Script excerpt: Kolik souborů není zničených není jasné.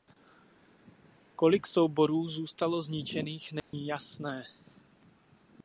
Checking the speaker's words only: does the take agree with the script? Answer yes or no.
no